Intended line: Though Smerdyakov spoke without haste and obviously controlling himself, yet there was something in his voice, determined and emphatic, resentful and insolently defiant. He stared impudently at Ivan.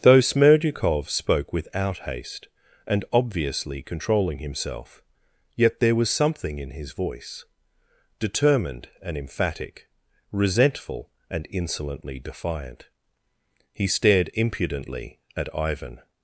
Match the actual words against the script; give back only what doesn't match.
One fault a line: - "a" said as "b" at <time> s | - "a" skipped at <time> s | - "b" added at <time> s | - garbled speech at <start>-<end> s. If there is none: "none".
none